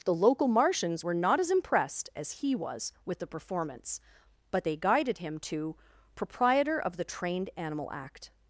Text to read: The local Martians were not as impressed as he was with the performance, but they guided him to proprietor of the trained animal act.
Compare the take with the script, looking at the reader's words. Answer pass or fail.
pass